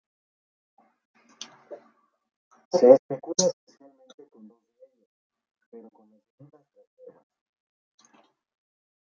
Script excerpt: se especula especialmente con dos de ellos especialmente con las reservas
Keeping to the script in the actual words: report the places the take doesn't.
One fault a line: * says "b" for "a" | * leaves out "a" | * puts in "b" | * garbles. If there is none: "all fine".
* says "pero" for "especialmente"
* puts in "debidas"